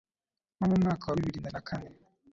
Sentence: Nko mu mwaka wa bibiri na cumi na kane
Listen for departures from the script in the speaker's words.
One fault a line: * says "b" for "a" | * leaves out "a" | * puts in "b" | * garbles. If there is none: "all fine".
* leaves out "cumi"